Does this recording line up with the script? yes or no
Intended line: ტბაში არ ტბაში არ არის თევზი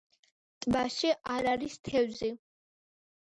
no